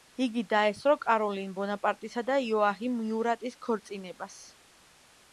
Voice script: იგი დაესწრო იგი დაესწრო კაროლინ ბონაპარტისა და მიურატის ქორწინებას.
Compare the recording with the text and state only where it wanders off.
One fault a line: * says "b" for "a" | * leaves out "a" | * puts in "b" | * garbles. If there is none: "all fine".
* leaves out "იგი დაესწრო"
* puts in "იოაჰიმ"